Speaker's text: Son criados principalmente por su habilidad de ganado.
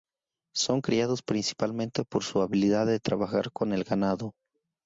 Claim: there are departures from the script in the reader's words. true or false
true